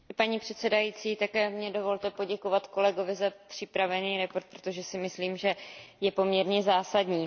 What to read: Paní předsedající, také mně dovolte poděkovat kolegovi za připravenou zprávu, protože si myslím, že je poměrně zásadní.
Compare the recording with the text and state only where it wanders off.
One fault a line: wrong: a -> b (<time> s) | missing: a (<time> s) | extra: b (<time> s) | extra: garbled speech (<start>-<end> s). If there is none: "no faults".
no faults